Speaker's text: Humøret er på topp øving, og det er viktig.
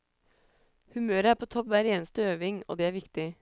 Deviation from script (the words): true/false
true